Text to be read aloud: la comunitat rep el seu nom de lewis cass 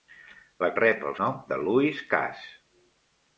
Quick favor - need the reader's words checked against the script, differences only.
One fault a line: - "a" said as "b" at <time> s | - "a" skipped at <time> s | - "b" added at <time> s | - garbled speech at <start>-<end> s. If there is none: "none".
- "comunitat" skipped at 0.7 s
- "seu" skipped at 1.2 s